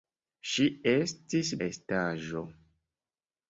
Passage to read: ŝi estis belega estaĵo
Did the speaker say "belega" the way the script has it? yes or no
no